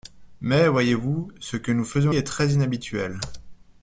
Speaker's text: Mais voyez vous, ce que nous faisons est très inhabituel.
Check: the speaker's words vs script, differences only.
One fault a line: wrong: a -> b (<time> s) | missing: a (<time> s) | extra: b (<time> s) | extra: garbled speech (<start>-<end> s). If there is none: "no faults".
no faults